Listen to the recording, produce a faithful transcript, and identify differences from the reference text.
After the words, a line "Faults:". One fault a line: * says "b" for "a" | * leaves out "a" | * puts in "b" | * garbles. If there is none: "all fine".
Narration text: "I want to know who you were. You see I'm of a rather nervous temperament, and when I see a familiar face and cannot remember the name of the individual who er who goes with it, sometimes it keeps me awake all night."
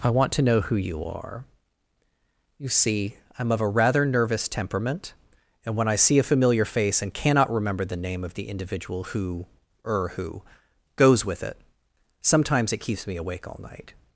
"I want to know who you are. You see I'm of a rather nervous temperament, and when I see a familiar face and cannot remember the name of the individual who er who goes with it, sometimes it keeps me awake all night."
Faults:
* says "are" for "were"